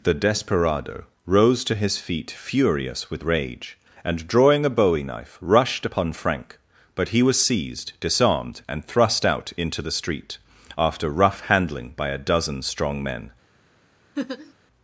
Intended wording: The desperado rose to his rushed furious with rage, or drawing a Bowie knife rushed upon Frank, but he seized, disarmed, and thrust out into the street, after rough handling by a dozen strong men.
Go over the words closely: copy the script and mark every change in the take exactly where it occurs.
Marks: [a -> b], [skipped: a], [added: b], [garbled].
The desperado rose to his [rushed -> feet] furious with rage, [or -> and] drawing a Bowie knife rushed upon Frank, but he [added: was] seized, disarmed, and thrust out into the street, after rough handling by a dozen strong men.